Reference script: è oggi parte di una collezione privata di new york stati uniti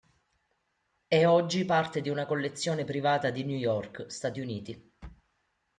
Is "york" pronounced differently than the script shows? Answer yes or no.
no